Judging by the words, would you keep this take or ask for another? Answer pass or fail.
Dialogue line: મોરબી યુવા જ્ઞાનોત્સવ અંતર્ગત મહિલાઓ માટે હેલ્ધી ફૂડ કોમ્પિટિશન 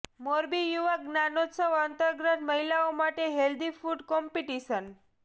pass